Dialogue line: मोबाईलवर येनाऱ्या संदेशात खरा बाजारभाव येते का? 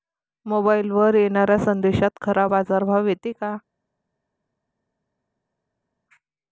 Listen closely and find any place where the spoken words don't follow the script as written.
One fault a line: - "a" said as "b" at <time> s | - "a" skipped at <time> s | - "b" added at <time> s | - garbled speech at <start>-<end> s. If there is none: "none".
none